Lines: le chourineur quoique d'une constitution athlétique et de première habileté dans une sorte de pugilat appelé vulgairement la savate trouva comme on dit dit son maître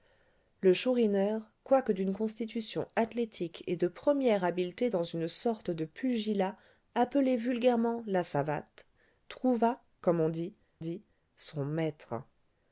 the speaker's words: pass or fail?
pass